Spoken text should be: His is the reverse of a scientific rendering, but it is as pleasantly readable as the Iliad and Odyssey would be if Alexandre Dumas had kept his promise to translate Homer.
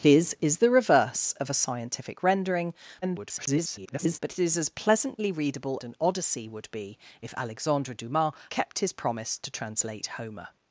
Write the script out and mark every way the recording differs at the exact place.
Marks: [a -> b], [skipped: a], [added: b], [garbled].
His is the reverse of a scientific rendering, [garbled] but it is as pleasantly readable [skipped: as the Iliad] and Odyssey would be if Alexandre Dumas [skipped: had] kept his promise to translate Homer.